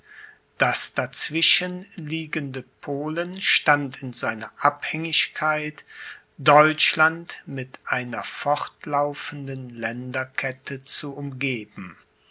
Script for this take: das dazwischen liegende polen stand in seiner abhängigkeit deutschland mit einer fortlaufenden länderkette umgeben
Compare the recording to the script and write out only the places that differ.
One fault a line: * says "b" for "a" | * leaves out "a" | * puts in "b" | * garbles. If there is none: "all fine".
* puts in "zu"